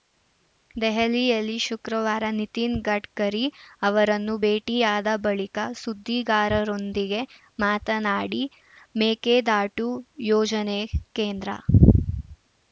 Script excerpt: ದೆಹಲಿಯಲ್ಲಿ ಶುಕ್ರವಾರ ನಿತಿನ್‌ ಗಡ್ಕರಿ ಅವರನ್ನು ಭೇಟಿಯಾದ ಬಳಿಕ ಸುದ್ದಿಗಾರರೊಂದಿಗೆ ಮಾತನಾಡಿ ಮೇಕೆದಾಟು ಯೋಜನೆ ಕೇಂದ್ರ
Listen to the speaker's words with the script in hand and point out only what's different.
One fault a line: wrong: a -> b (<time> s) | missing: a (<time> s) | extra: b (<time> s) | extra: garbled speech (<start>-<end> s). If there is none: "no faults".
no faults